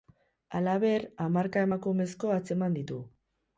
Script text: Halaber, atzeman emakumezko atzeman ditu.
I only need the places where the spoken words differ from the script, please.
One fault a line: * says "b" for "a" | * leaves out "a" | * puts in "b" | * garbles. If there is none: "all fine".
* says "hamarka" for "atzeman"